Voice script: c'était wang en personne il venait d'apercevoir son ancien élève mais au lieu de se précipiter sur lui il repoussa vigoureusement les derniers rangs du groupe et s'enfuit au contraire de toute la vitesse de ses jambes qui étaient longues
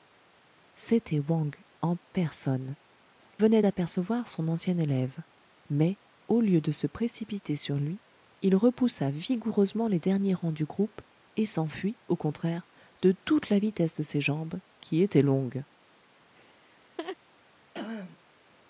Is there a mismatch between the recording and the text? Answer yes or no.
yes